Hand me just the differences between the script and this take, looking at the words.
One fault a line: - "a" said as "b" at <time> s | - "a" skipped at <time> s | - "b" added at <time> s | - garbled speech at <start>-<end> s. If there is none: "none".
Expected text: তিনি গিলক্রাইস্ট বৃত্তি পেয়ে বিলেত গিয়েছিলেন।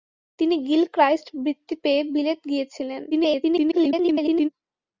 - garbled speech at 3.1-4.5 s